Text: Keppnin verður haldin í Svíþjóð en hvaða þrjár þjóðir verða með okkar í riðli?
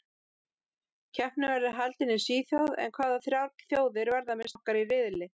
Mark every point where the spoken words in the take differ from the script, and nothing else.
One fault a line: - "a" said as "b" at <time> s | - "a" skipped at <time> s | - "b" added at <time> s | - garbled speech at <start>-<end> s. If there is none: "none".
none